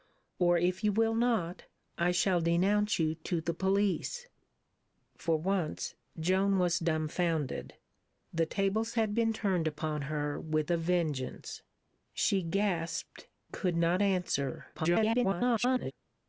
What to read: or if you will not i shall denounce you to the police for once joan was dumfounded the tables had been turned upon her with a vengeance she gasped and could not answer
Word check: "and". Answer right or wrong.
wrong